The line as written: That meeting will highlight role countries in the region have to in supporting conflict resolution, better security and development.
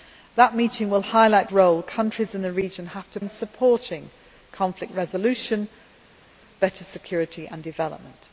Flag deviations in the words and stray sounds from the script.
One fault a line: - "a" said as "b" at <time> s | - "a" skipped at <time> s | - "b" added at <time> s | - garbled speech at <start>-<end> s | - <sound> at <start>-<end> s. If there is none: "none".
none